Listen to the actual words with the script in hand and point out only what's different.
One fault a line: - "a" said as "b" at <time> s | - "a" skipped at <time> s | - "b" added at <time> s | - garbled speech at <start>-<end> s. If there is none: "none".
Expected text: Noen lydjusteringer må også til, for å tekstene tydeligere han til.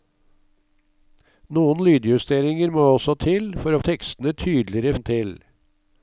none